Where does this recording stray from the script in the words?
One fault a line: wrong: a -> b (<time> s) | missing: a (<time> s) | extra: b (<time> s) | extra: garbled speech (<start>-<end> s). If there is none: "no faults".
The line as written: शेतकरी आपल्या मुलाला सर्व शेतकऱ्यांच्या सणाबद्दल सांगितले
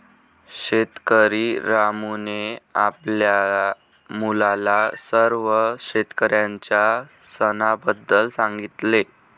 extra: रामूने (1.6 s)